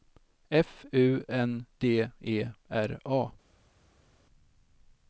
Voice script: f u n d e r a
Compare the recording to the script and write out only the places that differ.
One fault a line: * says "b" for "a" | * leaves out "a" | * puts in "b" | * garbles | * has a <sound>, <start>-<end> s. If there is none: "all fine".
all fine